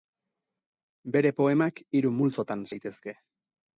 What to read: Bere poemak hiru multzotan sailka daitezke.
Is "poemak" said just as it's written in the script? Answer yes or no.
yes